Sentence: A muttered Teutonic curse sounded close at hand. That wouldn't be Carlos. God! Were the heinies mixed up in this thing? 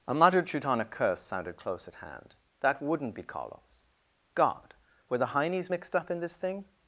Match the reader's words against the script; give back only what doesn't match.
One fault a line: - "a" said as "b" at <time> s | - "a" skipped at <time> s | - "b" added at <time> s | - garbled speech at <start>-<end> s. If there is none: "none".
none